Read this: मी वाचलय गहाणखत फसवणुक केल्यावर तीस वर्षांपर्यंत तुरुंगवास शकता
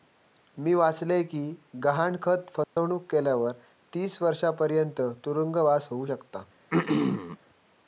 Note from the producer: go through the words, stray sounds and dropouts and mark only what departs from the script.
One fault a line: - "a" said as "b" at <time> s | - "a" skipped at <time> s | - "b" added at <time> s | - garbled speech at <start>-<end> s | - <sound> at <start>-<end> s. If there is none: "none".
- "कि" added at 1.2 s
- dropout at 2.6-2.8 s
- "होउ" added at 5.9 s
- throat clearing at 6.7-7.4 s